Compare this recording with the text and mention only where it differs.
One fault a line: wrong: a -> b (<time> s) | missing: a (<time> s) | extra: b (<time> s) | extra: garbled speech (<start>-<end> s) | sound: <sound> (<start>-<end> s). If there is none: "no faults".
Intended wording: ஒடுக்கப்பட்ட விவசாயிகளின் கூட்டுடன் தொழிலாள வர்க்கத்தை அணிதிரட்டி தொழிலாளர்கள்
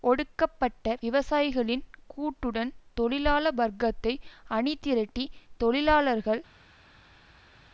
no faults